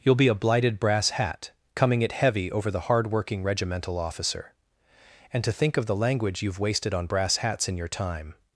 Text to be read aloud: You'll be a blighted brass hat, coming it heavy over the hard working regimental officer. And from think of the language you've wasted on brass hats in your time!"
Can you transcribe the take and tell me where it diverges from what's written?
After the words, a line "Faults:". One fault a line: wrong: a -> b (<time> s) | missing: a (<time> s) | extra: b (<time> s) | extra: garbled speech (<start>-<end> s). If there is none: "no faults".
You'll be a blighted brass hat, coming it heavy over the hard working regimental officer. And to think of the language you've wasted on brass hats in your time!"
Faults:
wrong: from -> to (5.4 s)